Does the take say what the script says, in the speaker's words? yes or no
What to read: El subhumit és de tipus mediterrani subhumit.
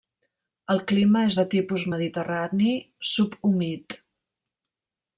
no